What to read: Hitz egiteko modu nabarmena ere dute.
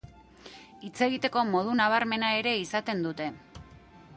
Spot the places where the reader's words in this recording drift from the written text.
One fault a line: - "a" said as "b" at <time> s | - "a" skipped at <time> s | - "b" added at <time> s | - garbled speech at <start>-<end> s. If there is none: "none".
- "izaten" added at 2.6 s